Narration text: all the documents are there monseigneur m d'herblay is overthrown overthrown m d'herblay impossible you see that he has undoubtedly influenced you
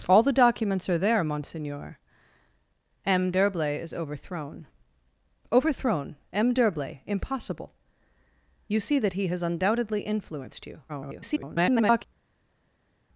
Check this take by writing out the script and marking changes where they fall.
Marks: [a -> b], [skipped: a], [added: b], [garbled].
all the documents are there monseigneur m d'herblay is overthrown overthrown m d'herblay impossible you see that he has undoubtedly influenced you [garbled]